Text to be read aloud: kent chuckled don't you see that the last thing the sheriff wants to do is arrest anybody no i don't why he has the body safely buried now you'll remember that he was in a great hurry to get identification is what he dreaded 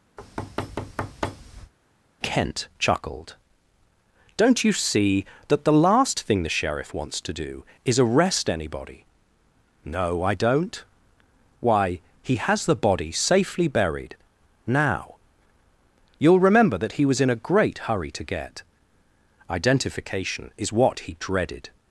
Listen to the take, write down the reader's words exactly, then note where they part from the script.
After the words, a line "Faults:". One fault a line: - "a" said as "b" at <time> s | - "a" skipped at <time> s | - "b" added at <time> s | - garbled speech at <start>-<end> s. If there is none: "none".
kent chuckled don't you see that the last thing the sheriff wants to do is arrest anybody no i don't why he has the body safely buried now you'll remember that he was in a great hurry to get identification is what he dreaded
Faults:
none